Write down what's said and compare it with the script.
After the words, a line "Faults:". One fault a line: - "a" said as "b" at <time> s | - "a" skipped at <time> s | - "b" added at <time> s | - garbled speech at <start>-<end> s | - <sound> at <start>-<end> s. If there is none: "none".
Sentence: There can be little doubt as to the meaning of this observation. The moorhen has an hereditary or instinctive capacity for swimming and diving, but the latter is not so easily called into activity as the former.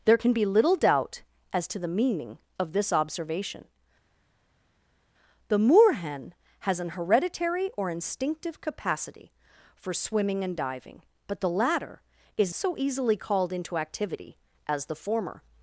There can be little doubt as to the meaning of this observation. The moorhen has an hereditary or instinctive capacity for swimming and diving, but the latter is so easily called into activity as the former.
Faults:
- "not" skipped at 12.5 s